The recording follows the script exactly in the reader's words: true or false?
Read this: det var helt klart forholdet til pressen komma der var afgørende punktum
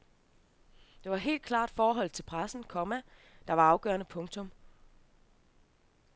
true